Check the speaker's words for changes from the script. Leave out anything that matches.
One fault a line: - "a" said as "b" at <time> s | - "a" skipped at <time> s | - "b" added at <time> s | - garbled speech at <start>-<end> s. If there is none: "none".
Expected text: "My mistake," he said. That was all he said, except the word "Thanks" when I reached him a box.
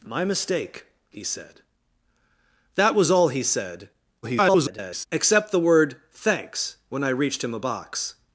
- garbled speech at 4.2-5.1 s